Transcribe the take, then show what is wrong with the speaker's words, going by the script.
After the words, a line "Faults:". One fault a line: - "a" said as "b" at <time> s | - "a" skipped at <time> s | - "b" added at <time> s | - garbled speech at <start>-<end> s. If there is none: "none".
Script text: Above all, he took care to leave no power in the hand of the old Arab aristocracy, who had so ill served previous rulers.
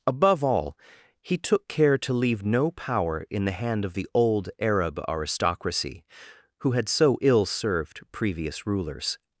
Above all, he took care to leave no power in the hand of the old Arab aristocracy, who had so ill served previous rulers.
Faults:
none